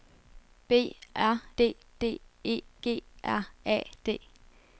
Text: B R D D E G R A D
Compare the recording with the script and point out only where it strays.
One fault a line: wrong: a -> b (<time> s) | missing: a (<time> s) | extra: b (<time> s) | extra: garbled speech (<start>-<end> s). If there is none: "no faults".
no faults